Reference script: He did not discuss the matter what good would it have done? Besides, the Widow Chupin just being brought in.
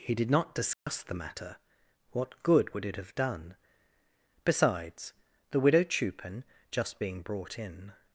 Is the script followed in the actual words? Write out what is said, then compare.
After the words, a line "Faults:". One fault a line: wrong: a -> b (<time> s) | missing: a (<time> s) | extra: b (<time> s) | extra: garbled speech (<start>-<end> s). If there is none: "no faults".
He did not discuss the matter what good would it have done? Besides, the Widow Chupin just being brought in.
Faults:
no faults